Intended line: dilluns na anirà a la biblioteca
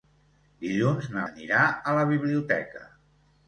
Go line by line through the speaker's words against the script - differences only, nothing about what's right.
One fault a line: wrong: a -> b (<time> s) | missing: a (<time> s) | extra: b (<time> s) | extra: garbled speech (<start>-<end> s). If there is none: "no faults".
no faults